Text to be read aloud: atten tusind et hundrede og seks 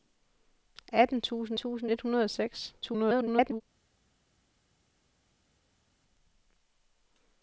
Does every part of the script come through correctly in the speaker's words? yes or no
no